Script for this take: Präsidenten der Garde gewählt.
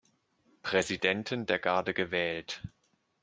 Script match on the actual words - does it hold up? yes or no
yes